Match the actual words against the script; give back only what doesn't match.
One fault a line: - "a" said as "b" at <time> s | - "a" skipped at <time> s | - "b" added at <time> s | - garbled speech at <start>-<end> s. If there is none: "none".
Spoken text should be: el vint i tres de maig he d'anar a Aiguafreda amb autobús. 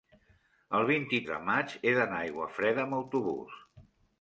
- "tres" skipped at 1.2 s